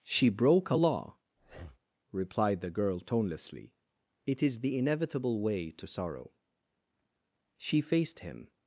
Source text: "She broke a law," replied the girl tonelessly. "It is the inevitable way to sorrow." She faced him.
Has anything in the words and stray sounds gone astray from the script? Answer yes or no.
yes